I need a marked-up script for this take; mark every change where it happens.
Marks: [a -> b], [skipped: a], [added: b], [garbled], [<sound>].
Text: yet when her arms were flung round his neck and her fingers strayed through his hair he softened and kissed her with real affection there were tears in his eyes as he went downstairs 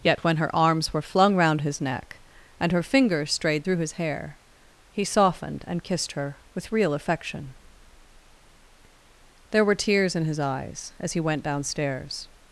yet when her arms were flung round his neck and her fingers strayed through his hair he softened and kissed her with real affection there were tears in his eyes as he went downstairs